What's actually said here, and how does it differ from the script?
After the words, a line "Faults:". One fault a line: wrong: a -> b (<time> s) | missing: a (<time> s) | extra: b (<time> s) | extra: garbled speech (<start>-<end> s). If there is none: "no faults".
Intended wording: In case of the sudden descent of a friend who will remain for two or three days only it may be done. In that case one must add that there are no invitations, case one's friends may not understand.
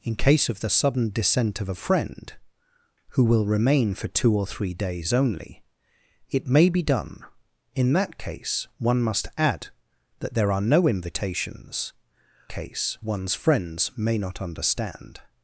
In case of the sudden descent of a friend who will remain for two or three days only it may be done. In that case one must add that there are no invitations, case one's friends may not understand.
Faults:
no faults